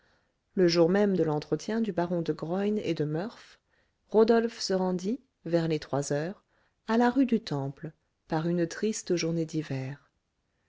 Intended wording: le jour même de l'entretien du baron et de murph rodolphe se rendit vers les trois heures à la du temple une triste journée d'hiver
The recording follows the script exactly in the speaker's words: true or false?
false